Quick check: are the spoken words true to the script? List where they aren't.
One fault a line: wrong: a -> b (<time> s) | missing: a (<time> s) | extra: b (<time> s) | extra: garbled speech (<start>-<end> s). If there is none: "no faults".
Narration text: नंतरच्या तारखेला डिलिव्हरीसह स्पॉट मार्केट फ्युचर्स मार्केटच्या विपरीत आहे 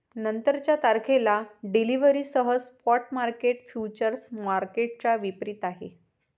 no faults